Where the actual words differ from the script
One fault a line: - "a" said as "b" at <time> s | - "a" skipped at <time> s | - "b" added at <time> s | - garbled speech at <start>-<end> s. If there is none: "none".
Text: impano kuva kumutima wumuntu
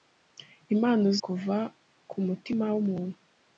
none